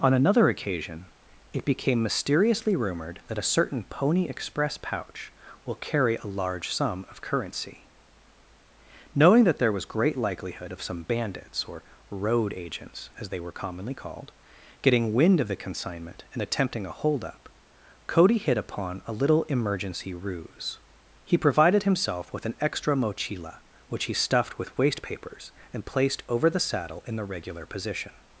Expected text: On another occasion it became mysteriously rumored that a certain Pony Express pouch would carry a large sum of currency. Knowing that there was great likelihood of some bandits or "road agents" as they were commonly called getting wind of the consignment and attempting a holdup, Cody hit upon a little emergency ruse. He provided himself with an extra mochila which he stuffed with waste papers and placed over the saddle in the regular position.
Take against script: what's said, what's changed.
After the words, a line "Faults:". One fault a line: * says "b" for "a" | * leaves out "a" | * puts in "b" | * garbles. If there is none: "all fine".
On another occasion it became mysteriously rumored that a certain Pony Express pouch will carry a large sum of currency. Knowing that there was great likelihood of some bandits or "road agents" as they were commonly called getting wind of the consignment and attempting a holdup, Cody hit upon a little emergency ruse. He provided himself with an extra mochila which he stuffed with waste papers and placed over the saddle in the regular position.
Faults:
* says "will" for "would"